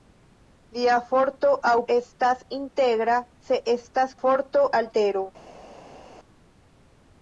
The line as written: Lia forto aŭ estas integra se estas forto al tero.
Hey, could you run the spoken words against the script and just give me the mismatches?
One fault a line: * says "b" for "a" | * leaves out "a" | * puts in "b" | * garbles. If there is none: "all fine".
all fine